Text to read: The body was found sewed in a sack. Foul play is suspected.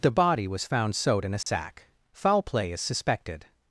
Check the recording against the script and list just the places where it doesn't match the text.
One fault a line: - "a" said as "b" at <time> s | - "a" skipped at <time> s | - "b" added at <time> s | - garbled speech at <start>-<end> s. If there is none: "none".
none